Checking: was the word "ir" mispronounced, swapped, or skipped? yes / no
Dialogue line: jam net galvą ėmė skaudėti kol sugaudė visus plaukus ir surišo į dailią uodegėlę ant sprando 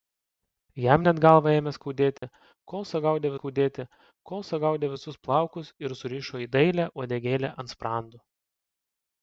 no